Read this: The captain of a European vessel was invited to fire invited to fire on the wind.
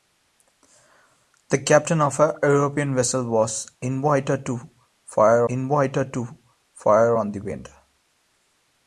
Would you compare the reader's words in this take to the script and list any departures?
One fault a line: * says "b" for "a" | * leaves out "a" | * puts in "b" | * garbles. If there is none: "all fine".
all fine